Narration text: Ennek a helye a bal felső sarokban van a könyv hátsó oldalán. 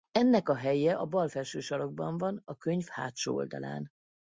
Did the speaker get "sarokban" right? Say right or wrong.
right